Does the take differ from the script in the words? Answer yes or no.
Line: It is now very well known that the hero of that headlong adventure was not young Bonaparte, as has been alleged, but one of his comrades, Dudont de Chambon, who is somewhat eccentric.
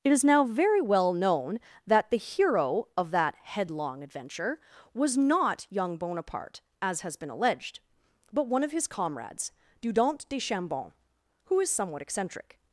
no